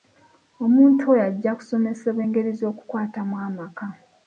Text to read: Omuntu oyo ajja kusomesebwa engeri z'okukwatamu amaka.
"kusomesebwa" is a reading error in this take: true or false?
false